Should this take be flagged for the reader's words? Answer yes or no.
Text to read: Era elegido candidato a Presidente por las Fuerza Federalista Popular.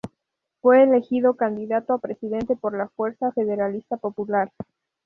yes